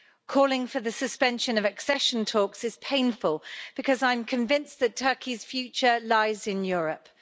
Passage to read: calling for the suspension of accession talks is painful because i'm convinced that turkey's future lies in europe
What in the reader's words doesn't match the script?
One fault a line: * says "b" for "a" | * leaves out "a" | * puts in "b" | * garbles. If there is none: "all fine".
all fine